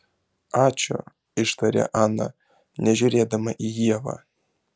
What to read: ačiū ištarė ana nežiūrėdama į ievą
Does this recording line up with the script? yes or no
yes